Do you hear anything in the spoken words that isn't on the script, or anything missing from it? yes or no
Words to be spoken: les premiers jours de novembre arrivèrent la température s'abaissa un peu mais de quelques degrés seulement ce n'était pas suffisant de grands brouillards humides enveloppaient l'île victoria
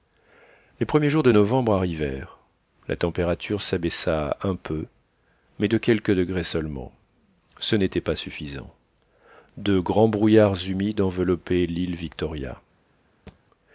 no